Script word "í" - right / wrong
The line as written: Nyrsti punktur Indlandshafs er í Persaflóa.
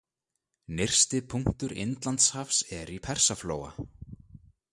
right